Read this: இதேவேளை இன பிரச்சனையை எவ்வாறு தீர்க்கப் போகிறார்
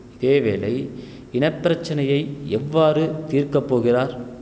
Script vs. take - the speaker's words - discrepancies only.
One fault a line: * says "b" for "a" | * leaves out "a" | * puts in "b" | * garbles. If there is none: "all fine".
all fine